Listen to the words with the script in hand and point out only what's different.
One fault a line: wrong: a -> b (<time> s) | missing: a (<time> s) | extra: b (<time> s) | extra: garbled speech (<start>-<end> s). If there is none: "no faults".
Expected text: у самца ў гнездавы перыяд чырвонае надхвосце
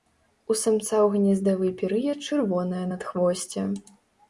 no faults